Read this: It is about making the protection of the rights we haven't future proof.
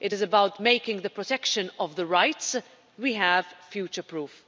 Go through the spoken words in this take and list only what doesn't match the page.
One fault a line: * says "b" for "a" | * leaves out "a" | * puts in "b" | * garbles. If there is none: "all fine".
* says "have" for "haven't"